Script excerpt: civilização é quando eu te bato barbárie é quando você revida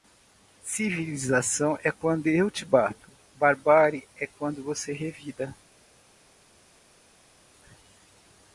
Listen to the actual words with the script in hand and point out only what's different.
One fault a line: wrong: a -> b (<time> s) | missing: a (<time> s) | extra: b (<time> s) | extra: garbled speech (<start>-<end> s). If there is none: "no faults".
no faults